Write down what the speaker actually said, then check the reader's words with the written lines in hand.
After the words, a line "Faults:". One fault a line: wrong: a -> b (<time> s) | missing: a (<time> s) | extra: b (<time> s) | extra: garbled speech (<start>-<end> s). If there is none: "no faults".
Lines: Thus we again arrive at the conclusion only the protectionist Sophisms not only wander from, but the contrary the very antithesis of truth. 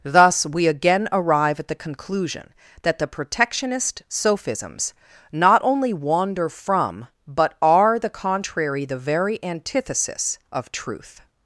Thus we again arrive at the conclusion that the protectionist Sophisms not only wander from, but are the contrary the very antithesis of truth.
Faults:
wrong: only -> that (2.8 s)
extra: are (7.6 s)